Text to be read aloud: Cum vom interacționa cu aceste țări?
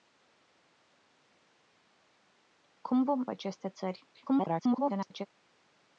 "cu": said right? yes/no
no